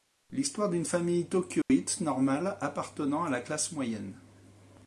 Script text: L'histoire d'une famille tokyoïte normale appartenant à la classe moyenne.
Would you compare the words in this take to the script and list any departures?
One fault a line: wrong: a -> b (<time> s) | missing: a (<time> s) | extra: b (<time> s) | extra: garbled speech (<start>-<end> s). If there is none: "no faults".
no faults